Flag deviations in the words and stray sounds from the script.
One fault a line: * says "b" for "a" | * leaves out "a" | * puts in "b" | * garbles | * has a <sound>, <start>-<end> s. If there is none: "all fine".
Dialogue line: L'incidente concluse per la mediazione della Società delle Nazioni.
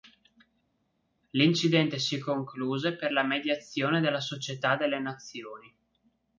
* puts in "si"